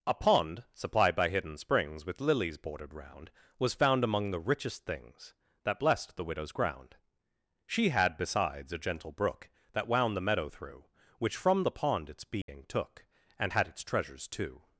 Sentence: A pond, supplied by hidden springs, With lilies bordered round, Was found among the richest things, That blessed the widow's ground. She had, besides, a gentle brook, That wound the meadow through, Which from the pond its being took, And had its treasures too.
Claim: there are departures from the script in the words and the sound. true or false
true